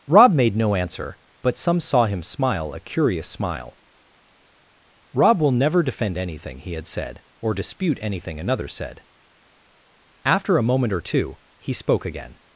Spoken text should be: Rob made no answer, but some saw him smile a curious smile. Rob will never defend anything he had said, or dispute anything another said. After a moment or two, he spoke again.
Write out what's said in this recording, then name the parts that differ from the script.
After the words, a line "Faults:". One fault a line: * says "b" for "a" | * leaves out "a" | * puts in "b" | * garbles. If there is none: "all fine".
Rob made no answer, but some saw him smile a curious smile. Rob will never defend anything he had said, or dispute anything another said. After a moment or two, he spoke again.
Faults:
all fine